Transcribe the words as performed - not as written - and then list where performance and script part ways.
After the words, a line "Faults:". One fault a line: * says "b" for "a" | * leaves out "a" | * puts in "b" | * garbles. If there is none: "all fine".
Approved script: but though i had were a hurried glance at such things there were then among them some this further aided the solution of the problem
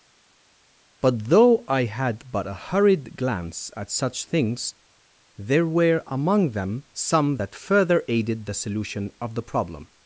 but though i had but a hurried glance at such things there were among them some that further aided the solution of the problem
Faults:
* says "but" for "were"
* leaves out "then"
* says "that" for "this"